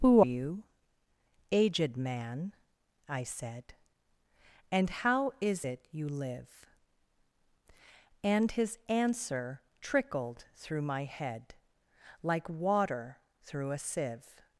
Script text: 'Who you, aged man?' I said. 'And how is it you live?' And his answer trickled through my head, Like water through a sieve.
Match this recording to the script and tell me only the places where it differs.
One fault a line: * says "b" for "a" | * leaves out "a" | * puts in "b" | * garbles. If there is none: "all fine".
all fine